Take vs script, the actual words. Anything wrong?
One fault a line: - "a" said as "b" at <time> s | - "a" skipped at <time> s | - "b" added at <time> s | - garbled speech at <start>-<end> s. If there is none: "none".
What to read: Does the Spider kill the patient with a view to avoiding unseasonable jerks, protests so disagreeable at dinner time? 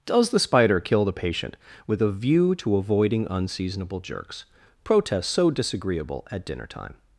none